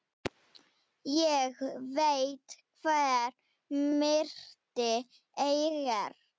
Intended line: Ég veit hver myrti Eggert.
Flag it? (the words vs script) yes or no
no